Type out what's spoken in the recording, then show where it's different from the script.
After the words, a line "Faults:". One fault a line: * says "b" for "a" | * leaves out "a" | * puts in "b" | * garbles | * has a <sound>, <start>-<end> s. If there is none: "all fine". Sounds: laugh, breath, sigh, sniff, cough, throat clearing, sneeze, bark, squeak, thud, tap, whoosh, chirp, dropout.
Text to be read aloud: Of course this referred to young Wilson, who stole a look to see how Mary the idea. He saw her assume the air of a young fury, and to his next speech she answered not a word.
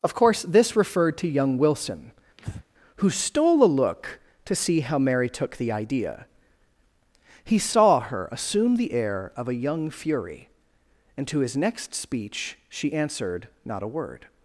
Of course this referred to young Wilson, who stole a look to see how Mary took the idea. He saw her assume the air of a young fury, and to his next speech she answered not a word.
Faults:
* has a breath, 2.4-2.6 s
* puts in "took"